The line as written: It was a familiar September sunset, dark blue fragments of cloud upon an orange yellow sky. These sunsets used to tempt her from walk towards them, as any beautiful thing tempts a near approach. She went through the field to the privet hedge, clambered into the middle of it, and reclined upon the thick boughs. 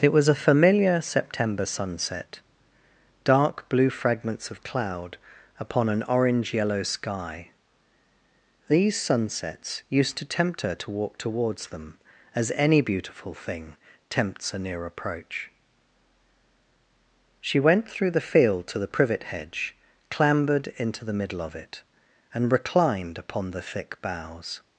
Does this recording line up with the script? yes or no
no